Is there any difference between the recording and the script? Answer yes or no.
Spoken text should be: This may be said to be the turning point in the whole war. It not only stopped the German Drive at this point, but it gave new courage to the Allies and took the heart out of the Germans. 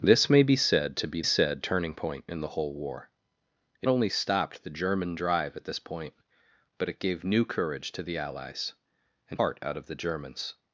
yes